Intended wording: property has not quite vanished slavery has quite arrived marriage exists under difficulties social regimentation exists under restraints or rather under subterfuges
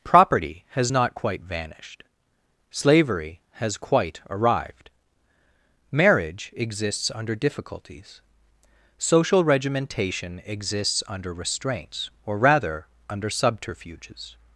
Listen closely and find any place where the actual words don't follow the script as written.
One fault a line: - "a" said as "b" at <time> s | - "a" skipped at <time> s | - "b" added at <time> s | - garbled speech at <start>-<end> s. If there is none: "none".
none